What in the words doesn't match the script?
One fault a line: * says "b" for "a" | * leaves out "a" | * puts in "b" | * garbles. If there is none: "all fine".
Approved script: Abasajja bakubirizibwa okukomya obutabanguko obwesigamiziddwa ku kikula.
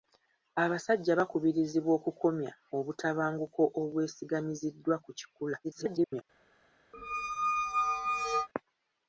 * garbles